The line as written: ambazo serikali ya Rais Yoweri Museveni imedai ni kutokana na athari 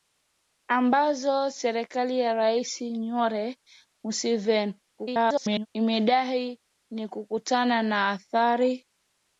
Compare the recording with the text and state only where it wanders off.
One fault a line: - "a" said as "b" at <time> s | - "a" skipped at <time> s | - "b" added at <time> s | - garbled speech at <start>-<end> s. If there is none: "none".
- garbled speech at 5.0-5.7 s